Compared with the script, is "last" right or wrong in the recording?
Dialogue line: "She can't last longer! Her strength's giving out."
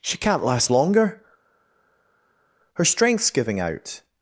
right